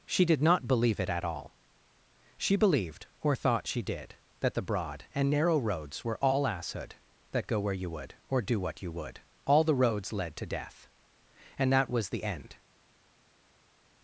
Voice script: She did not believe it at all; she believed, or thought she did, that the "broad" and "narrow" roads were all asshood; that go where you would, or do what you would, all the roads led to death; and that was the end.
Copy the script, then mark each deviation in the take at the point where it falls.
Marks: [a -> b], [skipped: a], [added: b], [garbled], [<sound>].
She did not believe it at all; she believed, or thought she did, that the "broad" and "narrow" roads were all asshood; that go where you would, or do what you would, all the roads led to death; and that was the end.